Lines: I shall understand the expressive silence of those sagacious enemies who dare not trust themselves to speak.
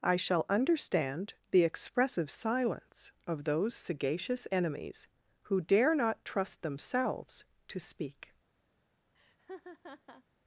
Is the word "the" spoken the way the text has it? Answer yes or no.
yes